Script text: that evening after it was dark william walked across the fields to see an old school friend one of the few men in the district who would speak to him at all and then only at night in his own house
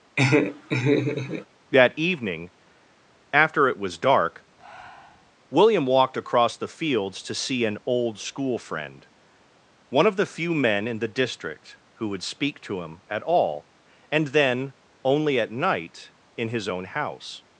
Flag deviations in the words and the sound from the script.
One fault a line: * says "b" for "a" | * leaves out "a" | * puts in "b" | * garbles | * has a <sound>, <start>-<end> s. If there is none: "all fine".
* has a laugh, 0.2-1.5 s
* has a breath, 4.6-5.3 s